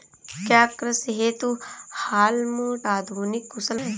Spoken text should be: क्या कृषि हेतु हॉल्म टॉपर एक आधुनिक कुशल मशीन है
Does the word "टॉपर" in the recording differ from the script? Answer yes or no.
yes